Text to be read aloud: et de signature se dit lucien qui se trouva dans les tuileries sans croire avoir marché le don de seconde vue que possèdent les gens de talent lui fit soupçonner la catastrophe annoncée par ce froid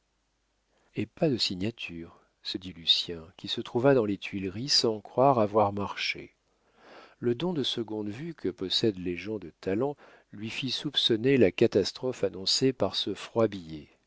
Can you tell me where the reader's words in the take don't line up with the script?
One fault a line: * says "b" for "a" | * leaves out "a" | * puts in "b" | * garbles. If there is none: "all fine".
* puts in "pas"